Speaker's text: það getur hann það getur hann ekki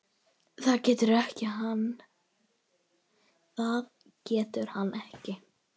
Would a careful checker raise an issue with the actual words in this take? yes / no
yes